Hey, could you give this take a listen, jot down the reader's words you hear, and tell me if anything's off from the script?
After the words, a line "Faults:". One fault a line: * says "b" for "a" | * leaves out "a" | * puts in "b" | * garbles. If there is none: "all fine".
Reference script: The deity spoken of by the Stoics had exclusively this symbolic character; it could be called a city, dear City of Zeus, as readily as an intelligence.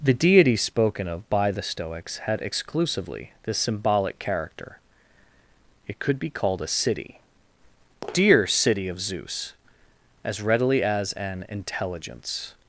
The deity spoken of by the Stoics had exclusively this symbolic character; it could be called a city, dear City of Zeus, as readily as an intelligence.
Faults:
all fine